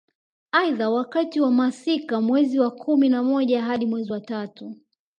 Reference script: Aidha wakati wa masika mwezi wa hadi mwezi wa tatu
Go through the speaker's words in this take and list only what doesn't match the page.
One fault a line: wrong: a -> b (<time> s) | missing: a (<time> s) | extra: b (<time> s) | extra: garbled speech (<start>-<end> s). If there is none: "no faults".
extra: kumi na moja (2.7 s)